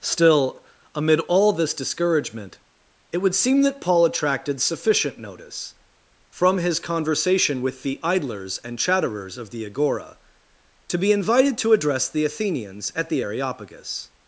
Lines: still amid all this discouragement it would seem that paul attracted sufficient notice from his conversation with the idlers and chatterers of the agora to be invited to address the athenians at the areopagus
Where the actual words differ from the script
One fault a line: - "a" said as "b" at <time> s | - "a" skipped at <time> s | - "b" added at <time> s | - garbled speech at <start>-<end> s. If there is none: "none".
none